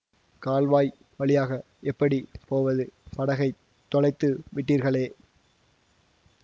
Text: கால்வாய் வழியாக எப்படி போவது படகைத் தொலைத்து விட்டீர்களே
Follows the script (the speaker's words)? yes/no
yes